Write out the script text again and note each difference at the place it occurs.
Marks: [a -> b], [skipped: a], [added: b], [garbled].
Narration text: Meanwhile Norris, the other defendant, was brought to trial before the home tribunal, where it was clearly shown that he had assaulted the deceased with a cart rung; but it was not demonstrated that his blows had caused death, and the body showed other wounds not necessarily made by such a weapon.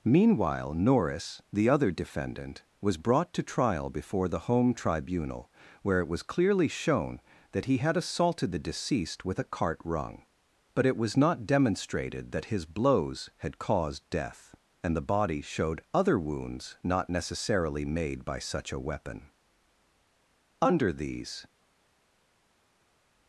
Meanwhile Norris, the other defendant, was brought to trial before the home tribunal, where it was clearly shown that he had assaulted the deceased with a cart rung; but it was not demonstrated that his blows had caused death, and the body showed other wounds not necessarily made by such a weapon. [added: Under these]